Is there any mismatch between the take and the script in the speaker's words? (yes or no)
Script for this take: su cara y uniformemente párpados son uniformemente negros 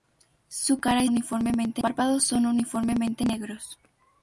no